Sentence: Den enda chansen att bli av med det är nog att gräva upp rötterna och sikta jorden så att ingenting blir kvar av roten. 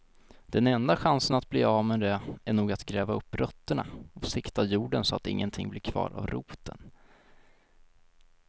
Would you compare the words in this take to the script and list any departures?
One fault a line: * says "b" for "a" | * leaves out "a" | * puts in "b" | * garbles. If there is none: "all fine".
all fine